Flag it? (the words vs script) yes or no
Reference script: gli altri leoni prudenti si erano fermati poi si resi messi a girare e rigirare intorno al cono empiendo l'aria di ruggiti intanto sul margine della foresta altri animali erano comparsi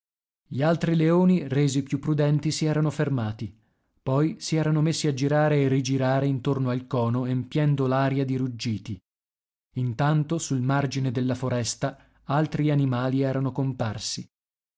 yes